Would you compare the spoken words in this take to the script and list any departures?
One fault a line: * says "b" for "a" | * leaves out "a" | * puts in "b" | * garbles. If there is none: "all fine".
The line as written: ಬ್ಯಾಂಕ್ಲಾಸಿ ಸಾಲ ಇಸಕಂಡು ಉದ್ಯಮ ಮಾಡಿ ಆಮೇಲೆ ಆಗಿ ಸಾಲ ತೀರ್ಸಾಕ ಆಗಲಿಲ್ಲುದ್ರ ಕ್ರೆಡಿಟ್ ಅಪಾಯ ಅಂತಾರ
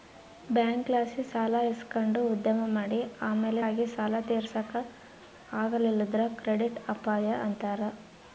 all fine